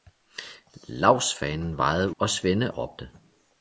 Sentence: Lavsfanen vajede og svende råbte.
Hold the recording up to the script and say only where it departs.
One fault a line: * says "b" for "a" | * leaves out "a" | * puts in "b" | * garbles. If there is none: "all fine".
all fine